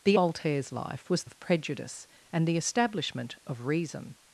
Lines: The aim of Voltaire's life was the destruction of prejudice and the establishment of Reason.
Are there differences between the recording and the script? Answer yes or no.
yes